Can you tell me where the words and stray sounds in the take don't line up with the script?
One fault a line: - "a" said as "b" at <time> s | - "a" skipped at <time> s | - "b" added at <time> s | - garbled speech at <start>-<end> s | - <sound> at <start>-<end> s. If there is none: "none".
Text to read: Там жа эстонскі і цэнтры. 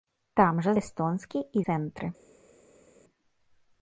none